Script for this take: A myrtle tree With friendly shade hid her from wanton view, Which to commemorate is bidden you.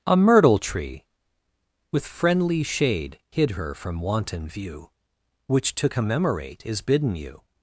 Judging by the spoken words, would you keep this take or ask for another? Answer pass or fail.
pass